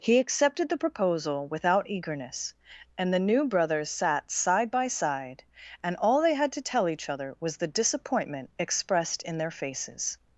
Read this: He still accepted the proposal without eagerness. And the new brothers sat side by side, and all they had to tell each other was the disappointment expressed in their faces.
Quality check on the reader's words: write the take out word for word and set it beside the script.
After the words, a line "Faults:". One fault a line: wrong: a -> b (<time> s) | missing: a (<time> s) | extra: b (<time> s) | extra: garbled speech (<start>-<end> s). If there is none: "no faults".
He accepted the proposal without eagerness. And the new brothers sat side by side, and all they had to tell each other was the disappointment expressed in their faces.
Faults:
missing: still (0.2 s)